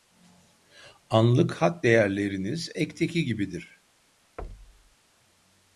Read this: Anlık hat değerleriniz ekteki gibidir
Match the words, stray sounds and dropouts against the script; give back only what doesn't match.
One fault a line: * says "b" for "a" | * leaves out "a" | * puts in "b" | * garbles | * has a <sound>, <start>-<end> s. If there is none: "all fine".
* has a thud, 4.4-5.0 s